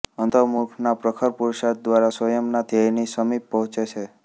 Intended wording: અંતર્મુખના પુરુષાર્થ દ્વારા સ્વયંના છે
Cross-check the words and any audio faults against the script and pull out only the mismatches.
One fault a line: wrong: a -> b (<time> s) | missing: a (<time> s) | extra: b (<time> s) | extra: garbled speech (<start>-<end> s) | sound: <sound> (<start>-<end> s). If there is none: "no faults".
extra: પ્રખર (1.0 s)
extra: ધ્યેયની સમીપ પહોંચે (2.7 s)